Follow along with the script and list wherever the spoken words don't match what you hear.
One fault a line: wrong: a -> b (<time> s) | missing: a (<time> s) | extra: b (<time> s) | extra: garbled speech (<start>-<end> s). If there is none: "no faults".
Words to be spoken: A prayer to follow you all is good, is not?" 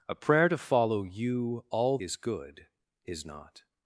no faults